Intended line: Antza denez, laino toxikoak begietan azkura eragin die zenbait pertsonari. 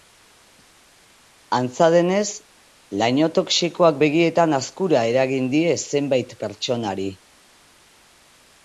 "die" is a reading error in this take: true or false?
false